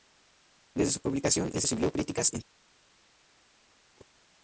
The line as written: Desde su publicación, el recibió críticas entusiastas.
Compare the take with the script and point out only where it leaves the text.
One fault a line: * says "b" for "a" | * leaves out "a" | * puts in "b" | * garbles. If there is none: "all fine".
all fine